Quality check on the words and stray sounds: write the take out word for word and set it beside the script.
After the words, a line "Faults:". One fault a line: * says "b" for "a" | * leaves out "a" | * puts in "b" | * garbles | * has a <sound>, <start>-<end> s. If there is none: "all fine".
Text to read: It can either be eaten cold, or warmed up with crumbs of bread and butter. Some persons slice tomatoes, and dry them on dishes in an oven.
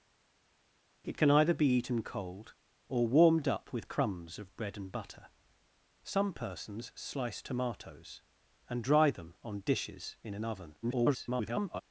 It can either be eaten cold, or warmed up with crumbs of bread and butter. Some persons slice tomatoes, and dry them on dishes in an oven. [garbled]
Faults:
* garbles